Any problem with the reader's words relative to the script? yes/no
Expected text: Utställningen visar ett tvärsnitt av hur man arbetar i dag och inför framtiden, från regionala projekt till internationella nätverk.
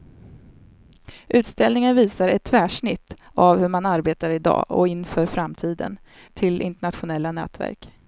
yes